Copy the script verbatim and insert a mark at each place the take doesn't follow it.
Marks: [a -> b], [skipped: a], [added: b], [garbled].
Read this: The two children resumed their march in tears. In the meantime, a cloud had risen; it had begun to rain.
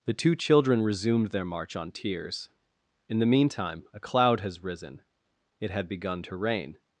The two children resumed their march [in -> on] tears. In the meantime, a cloud [had -> has] risen; it had begun to rain.